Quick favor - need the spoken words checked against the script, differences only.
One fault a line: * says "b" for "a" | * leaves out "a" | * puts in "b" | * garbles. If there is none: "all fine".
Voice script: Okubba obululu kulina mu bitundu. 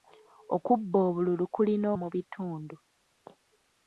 all fine